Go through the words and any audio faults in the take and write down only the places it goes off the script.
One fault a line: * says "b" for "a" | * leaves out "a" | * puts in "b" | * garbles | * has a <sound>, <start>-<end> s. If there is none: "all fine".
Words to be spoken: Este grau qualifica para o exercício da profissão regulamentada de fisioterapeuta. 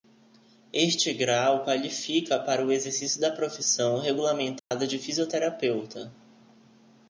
* has a dropout, 4.6-4.7 s